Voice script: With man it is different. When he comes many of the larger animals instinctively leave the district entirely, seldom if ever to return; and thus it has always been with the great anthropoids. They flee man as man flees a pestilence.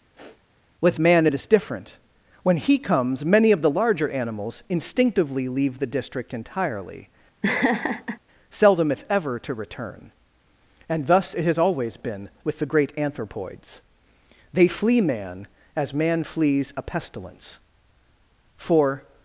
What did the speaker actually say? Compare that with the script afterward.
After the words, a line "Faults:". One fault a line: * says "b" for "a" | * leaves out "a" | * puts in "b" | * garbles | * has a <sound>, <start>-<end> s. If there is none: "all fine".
With man it is different. When he comes many of the larger animals instinctively leave the district entirely, seldom if ever to return; and thus it has always been with the great anthropoids. They flee man as man flees a pestilence. For
Faults:
* has a sniff, 0.2-0.4 s
* has a laugh, 7.4-8.2 s
* puts in "For"